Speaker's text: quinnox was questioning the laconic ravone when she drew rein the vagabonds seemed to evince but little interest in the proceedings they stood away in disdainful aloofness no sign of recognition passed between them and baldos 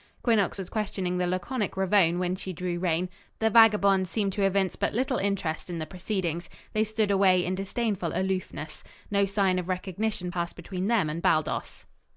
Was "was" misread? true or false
false